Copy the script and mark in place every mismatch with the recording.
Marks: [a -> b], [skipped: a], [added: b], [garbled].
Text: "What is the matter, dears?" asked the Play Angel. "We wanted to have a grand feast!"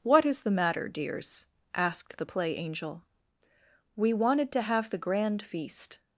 "What is the matter, dears?" asked the Play Angel. "We wanted to have [a -> the] grand feast!"